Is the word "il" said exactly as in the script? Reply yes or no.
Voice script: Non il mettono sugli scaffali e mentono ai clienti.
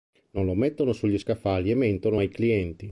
no